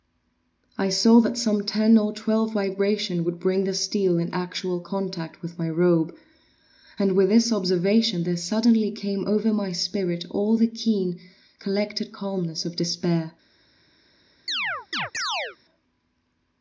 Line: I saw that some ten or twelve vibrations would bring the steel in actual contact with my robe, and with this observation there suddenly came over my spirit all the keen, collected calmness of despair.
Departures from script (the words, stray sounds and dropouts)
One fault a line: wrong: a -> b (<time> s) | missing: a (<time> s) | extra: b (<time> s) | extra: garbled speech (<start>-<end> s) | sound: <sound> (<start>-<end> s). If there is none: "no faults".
sound: chirp (14.5-15.6 s)